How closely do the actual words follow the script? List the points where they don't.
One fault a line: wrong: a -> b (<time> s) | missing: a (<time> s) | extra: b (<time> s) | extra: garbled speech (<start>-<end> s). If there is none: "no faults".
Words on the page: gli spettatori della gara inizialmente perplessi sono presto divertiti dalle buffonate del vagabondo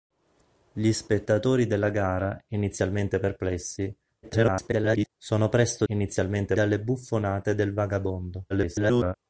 extra: garbled speech (4.2-5.1 s)
wrong: divertiti -> inizialmente (5.8 s)
extra: garbled speech (8.5-9.1 s)